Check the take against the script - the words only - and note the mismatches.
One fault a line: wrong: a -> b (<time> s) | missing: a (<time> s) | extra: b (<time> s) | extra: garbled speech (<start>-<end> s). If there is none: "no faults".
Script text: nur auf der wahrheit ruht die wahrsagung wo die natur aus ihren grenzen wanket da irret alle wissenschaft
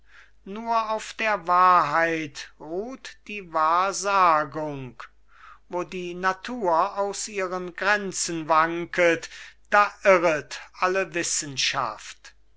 no faults